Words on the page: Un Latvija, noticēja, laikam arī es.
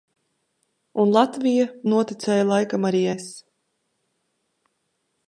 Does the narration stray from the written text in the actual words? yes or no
no